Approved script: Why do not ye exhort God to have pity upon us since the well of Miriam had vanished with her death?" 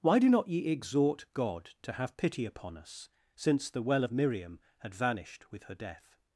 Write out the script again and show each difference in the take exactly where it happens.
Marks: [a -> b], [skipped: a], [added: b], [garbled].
Why do not ye exhort God to have pity upon us since the well of Miriam had vanished with her death?"